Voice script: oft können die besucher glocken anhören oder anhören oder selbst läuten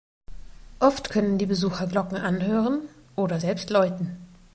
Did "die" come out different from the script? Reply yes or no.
no